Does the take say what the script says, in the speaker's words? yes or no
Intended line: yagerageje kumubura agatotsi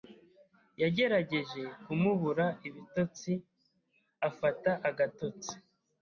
no